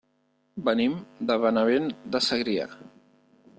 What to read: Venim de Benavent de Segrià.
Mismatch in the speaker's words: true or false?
false